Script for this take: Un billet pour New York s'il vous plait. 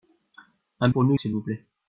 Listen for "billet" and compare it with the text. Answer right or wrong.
wrong